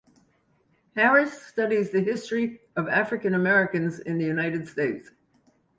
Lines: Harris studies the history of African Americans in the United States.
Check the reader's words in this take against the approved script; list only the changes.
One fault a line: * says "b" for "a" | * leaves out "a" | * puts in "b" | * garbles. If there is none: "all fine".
all fine